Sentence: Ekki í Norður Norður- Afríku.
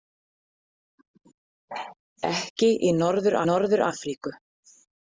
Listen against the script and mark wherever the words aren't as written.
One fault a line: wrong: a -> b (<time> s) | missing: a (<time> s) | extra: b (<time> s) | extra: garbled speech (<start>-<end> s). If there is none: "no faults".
no faults